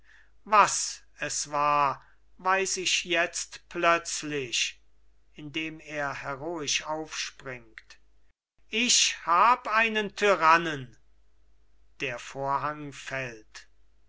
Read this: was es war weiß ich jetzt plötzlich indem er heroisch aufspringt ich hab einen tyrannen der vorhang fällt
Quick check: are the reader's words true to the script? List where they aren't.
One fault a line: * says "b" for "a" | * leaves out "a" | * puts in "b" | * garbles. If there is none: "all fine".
all fine